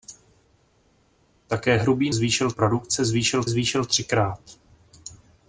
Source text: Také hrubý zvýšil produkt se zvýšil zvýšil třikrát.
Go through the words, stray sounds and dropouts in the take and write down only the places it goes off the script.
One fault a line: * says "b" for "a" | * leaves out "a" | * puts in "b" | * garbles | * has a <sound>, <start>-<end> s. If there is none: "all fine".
all fine